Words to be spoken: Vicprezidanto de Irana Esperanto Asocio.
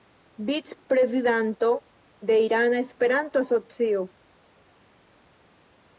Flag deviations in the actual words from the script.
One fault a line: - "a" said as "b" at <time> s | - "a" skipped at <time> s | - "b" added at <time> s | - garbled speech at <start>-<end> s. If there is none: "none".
none